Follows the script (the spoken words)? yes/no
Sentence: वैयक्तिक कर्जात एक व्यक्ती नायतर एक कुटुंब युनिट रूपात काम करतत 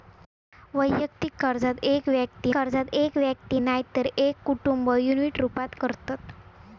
no